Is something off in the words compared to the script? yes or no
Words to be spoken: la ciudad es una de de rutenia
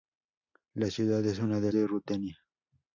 no